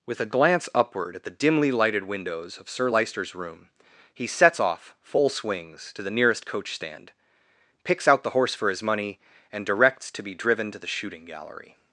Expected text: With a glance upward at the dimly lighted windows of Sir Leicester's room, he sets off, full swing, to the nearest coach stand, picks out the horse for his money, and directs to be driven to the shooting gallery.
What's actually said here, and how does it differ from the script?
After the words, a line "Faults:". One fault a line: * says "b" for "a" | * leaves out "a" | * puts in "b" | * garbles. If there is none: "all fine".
With a glance upward at the dimly lighted windows of Sir Leicester's room, he sets off, full swings, to the nearest coach stand, picks out the horse for his money, and directs to be driven to the shooting gallery.
Faults:
* says "swings" for "swing"